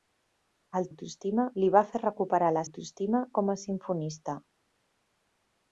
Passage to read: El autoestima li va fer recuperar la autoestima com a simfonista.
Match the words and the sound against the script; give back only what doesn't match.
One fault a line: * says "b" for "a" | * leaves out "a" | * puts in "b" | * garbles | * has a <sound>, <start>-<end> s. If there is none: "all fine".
all fine